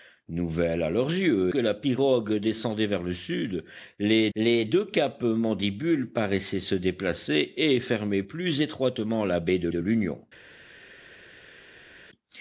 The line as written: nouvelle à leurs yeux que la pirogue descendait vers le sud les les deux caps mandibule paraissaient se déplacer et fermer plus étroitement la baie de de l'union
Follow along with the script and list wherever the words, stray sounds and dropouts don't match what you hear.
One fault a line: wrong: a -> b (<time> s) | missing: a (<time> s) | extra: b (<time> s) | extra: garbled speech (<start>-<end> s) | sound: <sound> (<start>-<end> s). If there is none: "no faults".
no faults